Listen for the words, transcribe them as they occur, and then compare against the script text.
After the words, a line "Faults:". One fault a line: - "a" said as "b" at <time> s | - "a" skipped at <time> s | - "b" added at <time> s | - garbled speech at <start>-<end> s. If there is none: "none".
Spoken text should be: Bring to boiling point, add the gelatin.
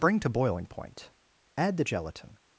Bring to boiling point, add the gelatin.
Faults:
none